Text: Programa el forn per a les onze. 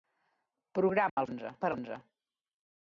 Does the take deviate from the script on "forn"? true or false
true